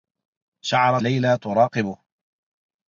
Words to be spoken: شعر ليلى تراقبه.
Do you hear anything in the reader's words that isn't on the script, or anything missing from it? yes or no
no